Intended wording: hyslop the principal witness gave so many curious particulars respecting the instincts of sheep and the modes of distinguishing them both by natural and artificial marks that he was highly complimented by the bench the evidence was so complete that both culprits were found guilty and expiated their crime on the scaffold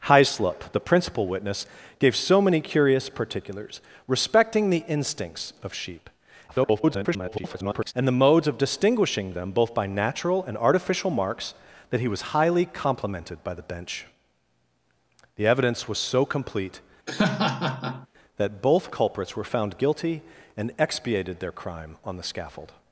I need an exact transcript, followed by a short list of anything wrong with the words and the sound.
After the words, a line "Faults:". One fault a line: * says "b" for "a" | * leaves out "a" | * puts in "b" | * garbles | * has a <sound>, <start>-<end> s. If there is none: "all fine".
hyslop the principal witness gave so many curious particulars respecting the instincts of sheep [garbled] and the modes of distinguishing them both by natural and artificial marks that he was highly complimented by the bench the evidence was so complete that both culprits were found guilty and expiated their crime on the scaffold
Faults:
* garbles
* has a laugh, 17.1-18.1 s